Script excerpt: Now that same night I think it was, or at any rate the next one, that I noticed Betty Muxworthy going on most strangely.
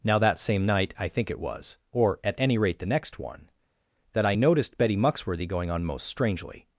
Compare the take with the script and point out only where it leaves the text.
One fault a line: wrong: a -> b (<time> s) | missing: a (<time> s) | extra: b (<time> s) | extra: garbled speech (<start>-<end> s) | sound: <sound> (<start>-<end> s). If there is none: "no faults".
no faults